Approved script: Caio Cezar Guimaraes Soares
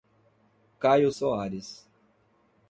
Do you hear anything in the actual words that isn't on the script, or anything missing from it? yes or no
yes